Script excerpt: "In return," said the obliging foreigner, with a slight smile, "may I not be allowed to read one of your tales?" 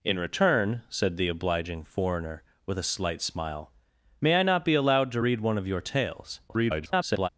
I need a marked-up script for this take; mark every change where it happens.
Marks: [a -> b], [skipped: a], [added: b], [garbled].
"In return," said the obliging foreigner, with a slight smile, "may I not be allowed to read one of your tales?" [garbled]